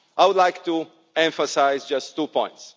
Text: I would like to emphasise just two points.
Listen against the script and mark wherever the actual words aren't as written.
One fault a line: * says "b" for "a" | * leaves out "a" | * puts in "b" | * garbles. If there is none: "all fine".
all fine